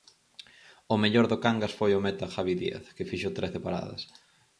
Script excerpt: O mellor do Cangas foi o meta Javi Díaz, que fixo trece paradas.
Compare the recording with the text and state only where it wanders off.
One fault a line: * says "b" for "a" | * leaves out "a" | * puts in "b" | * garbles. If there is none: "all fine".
all fine